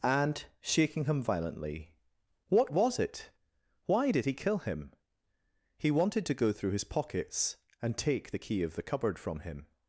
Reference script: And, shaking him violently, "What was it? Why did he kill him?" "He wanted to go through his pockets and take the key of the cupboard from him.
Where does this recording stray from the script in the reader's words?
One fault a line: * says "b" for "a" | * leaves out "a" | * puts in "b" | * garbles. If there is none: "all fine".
all fine